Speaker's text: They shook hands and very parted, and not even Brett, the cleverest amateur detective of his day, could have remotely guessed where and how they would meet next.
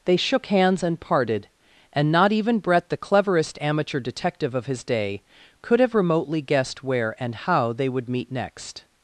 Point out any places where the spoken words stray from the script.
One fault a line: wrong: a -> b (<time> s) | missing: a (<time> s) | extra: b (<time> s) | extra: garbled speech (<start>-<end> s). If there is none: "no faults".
missing: very (1.0 s)